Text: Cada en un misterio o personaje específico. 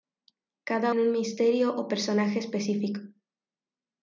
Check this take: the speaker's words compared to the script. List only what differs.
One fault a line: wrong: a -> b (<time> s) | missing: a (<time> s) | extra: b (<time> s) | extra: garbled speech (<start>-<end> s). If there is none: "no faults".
no faults